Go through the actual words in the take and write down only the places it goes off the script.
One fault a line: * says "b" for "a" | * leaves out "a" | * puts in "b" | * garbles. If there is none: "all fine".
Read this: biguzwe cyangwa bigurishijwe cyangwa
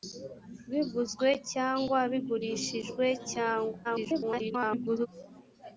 * garbles